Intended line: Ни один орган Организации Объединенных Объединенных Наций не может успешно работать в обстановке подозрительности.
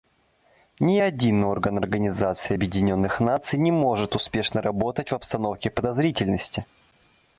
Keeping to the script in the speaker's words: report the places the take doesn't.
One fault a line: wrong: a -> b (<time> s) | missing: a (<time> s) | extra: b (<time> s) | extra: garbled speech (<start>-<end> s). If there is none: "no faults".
missing: Объединенных (3.2 s)